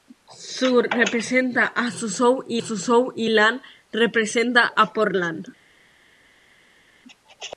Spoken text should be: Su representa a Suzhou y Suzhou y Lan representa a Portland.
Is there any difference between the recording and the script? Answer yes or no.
no